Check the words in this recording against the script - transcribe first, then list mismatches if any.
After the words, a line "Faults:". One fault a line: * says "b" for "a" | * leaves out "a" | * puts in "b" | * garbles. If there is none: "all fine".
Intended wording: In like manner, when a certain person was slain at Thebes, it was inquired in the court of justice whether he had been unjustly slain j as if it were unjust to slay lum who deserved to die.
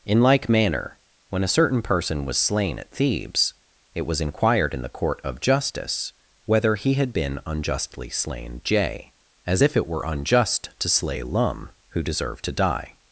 In like manner, when a certain person was slain at Thebes, it was inquired in the court of justice whether he had been unjustly slain j as if it were unjust to slay lum who deserved to die.
Faults:
all fine